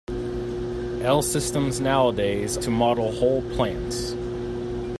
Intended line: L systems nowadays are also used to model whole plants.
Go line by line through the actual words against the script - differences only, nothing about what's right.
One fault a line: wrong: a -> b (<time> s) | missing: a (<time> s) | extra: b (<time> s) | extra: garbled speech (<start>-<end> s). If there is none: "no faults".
missing: are also used (2.6 s)